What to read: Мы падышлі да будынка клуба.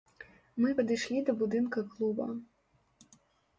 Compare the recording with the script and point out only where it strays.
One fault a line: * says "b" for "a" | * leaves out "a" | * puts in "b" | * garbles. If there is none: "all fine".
all fine